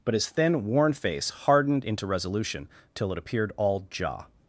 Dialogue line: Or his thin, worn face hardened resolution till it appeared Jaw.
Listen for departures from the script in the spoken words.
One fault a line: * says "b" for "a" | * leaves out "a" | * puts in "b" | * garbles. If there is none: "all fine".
* says "But" for "Or"
* puts in "into"
* puts in "all"